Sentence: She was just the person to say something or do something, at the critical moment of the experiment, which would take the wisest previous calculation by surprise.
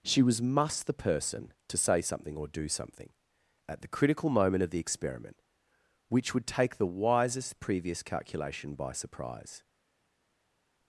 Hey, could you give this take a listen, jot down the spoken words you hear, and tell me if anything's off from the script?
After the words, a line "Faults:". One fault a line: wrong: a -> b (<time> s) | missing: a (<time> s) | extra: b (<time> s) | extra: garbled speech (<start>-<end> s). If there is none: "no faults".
She was must the person to say something or do something, at the critical moment of the experiment, which would take the wisest previous calculation by surprise.
Faults:
wrong: just -> must (0.4 s)